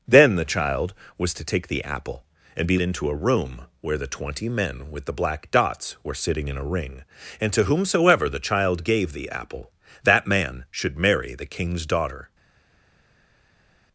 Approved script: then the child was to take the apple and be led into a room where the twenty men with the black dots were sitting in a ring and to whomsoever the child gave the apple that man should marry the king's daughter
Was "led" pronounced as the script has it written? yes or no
no